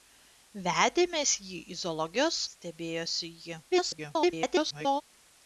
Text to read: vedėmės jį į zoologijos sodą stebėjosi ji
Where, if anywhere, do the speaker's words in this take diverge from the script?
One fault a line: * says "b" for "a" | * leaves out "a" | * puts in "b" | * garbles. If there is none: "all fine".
* leaves out "sodą"
* garbles